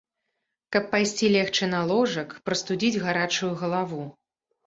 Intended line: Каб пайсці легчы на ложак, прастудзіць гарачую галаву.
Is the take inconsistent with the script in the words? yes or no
no